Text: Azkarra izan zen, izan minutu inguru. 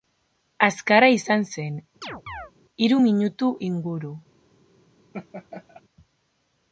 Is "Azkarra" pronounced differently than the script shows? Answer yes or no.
no